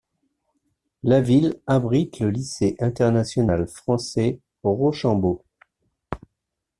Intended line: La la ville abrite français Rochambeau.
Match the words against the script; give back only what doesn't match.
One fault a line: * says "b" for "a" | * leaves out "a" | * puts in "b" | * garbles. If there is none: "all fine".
* leaves out "la"
* puts in "le lycée international"